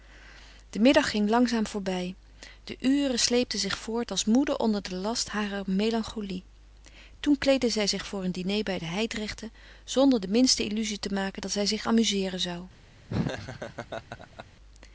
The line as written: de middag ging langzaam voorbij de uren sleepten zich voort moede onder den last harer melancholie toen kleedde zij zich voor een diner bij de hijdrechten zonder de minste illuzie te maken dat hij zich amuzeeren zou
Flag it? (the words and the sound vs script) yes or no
yes